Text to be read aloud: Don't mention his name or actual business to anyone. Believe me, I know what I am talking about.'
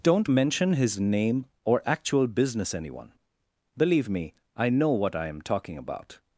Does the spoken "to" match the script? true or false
false